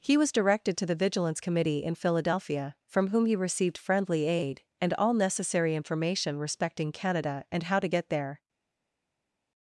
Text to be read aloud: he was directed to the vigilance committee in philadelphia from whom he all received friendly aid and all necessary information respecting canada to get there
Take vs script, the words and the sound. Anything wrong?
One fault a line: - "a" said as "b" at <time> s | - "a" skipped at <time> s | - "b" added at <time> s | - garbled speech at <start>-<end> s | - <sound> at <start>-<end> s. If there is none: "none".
- "all" skipped at 3.3 s
- "and how" added at 7.5 s